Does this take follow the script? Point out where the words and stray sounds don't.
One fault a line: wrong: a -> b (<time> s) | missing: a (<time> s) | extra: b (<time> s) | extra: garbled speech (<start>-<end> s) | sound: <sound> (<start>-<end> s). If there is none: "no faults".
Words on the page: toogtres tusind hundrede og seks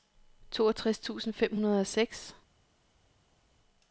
extra: fem (1.3 s)